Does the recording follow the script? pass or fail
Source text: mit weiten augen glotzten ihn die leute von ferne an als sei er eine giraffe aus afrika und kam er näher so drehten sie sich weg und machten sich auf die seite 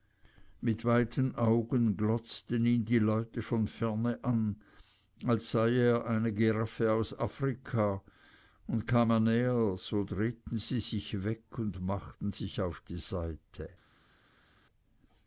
pass